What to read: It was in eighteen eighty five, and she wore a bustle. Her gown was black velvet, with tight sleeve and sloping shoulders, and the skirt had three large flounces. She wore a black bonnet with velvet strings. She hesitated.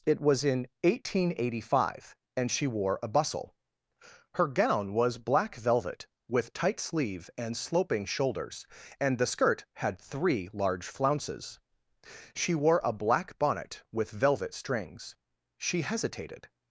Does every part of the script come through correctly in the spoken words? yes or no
yes